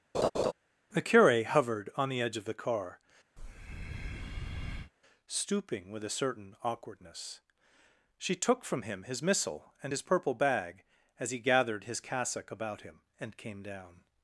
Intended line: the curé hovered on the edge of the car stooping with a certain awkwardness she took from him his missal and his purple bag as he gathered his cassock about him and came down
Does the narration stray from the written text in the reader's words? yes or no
no